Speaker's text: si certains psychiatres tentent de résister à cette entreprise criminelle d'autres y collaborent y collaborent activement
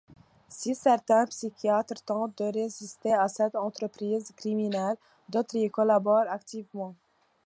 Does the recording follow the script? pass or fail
fail